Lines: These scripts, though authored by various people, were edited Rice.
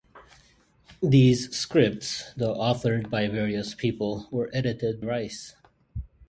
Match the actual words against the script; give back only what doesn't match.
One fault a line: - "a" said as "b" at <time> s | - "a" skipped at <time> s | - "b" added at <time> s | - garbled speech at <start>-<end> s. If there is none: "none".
none